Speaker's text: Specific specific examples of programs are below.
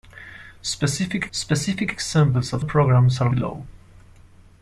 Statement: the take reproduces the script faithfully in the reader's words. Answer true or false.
true